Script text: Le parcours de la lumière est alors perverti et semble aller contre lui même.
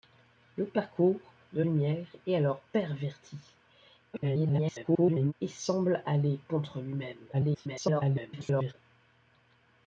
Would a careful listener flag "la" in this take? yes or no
yes